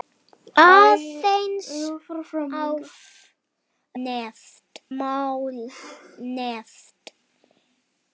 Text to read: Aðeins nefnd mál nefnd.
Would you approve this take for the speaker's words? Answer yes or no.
yes